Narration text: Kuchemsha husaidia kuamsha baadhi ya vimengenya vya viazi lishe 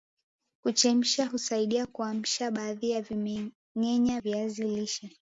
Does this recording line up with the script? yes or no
no